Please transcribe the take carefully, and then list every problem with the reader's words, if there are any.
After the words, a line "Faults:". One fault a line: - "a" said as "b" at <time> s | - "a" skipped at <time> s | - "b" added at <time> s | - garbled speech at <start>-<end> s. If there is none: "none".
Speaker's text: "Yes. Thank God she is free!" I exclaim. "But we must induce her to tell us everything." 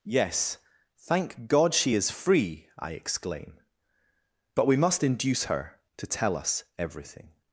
"Yes. Thank God she is free!" I exclaim. "But we must induce her to tell us everything."
Faults:
none